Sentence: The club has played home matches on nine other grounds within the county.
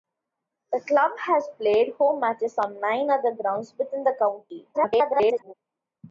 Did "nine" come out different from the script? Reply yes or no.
no